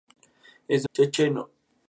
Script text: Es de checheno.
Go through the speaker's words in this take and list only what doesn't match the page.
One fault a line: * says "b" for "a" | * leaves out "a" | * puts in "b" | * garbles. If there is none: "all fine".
all fine